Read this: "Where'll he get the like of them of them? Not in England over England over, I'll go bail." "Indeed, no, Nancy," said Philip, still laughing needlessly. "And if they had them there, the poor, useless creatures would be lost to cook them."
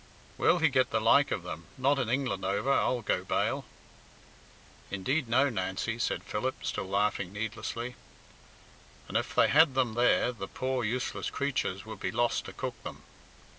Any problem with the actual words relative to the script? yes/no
yes